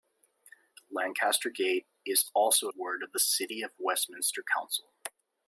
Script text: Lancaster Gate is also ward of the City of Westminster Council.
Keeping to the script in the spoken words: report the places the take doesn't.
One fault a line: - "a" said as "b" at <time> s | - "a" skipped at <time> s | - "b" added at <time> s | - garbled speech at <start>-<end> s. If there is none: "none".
none